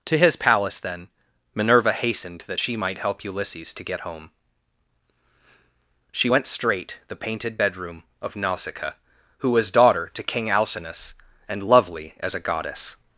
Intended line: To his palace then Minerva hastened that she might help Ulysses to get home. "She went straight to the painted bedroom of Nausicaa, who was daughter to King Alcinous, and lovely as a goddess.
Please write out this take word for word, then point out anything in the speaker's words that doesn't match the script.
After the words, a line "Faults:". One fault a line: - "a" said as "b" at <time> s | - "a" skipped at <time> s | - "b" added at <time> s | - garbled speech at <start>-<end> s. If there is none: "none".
To his palace then Minerva hastened that she might help Ulysses to get home. "She went straight the painted bedroom of Nausicaa, who was daughter to King Alcinous, and lovely as a goddess.
Faults:
- "to" skipped at 7.0 s